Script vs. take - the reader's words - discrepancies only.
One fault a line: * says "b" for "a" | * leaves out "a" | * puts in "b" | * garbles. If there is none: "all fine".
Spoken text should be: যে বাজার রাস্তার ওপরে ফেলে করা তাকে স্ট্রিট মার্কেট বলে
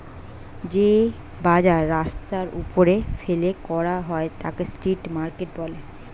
* puts in "হয়"